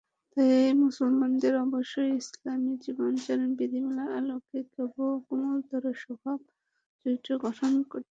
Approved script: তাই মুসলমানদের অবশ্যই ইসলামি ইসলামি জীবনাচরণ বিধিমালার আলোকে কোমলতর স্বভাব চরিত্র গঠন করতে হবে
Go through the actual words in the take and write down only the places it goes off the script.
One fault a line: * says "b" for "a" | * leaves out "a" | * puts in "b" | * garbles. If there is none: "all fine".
* leaves out "ইসলামি"